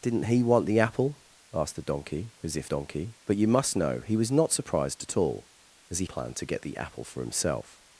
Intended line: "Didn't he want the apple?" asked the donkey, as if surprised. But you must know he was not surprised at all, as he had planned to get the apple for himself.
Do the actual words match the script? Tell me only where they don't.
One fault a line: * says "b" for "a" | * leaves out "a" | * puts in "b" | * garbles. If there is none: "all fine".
* says "donkey" for "surprised"
* leaves out "had"